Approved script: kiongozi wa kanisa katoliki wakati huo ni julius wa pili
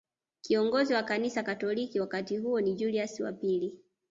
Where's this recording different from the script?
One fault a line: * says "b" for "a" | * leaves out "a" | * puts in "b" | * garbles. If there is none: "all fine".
all fine